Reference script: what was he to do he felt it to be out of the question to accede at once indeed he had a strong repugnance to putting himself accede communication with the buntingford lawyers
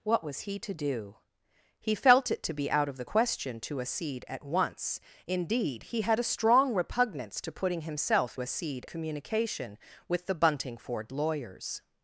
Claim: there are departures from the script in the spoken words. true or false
false